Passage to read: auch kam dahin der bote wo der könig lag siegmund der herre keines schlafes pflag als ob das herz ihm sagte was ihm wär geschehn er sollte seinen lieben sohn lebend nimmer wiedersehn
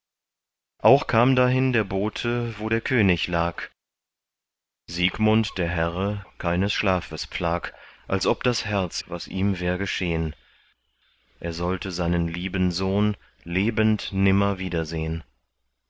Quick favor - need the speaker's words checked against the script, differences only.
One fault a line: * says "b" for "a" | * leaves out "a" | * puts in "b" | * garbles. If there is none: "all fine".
* leaves out "ihm sagte"